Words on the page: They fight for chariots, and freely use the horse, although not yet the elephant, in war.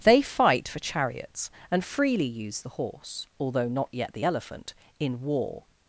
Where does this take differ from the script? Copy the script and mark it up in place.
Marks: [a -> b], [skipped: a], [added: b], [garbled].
They fight for chariots, and freely use the horse, although not yet the elephant, in war.